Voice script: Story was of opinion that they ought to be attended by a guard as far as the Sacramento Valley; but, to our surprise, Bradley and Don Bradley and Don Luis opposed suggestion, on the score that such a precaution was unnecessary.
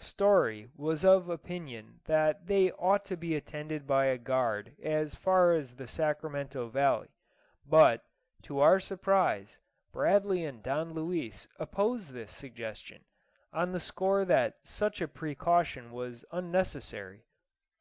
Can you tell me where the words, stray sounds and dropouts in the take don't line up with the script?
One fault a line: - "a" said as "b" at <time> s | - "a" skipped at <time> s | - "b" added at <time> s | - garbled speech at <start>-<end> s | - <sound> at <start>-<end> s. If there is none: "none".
- "Bradley and Don" skipped at 10.9 s
- "this" added at 12.1 s